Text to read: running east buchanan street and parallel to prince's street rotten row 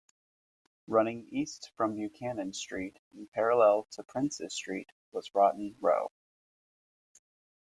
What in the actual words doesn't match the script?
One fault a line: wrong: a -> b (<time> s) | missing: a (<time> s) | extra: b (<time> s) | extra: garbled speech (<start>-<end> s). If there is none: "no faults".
extra: from (1.8 s)
extra: was (5.1 s)